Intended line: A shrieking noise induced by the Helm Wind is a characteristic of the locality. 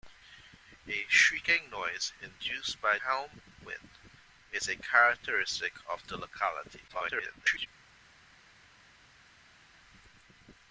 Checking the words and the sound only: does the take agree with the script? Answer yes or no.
no